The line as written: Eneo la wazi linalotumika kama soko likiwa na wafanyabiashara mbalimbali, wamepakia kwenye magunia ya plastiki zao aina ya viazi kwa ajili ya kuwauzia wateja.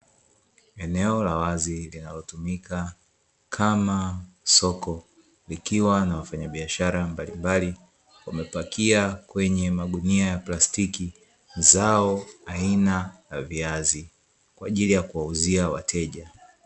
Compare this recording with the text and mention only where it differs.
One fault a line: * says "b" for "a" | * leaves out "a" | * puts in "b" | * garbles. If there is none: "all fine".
all fine